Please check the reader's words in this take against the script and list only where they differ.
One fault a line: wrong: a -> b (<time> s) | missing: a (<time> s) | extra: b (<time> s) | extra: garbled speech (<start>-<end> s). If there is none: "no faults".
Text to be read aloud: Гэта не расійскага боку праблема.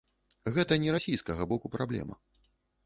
no faults